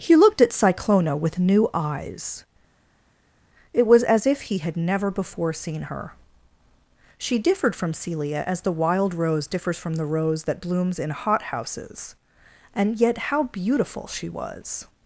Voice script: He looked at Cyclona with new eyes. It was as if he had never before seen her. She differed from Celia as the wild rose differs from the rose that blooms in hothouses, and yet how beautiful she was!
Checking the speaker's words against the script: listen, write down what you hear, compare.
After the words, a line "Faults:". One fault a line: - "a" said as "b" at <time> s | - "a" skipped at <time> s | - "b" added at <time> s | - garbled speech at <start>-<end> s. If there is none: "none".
He looked at Cyclona with new eyes. It was as if he had never before seen her. She differed from Celia as the wild rose differs from the rose that blooms in hothouses, and yet how beautiful she was!
Faults:
none